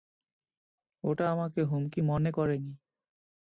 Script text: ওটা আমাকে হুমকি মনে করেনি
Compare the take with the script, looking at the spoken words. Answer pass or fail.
pass